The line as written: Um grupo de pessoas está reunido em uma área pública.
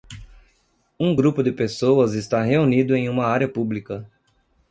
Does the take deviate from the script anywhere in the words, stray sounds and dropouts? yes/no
no